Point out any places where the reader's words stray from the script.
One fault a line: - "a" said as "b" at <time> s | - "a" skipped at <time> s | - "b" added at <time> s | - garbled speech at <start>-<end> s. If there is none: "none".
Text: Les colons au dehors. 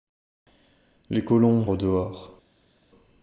none